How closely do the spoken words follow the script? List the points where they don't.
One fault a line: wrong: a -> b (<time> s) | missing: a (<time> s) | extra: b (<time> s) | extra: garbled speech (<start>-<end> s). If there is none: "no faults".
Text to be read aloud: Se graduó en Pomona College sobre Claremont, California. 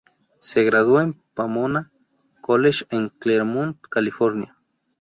wrong: sobre -> en (2.9 s)